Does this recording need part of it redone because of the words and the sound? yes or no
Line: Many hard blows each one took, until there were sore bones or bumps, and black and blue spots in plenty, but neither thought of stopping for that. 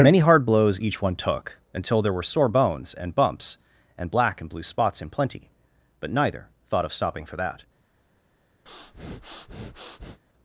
yes